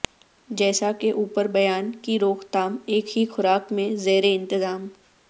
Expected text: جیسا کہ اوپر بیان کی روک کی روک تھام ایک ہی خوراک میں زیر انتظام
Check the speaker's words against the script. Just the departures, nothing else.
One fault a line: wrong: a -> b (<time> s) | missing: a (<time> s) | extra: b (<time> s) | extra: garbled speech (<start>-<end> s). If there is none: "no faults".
missing: کی روک (2.4 s)